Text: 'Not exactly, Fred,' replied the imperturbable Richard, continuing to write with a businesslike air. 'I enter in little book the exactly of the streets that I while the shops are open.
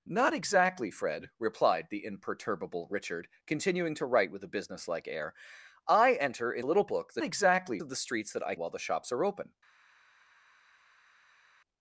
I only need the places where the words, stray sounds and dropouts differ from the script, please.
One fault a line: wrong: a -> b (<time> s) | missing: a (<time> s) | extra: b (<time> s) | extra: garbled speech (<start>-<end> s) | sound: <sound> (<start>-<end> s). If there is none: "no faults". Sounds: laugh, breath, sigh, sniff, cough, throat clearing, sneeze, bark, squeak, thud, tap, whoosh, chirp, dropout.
no faults